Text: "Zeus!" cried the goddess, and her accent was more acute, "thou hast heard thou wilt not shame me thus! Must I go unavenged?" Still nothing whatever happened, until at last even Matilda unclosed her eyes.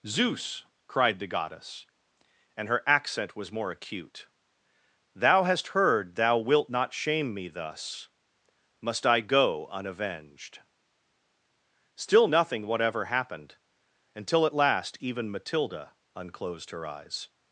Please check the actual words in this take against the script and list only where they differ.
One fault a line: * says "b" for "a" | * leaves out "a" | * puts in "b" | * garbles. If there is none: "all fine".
all fine